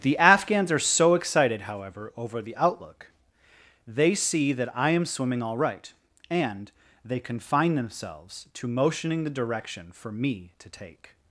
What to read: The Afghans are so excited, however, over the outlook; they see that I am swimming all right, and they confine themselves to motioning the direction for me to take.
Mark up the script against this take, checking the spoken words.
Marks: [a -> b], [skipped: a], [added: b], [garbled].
The Afghans are so excited, however, over the outlook; they see that I am swimming all right, and they confine themselves to motioning the direction for me to take.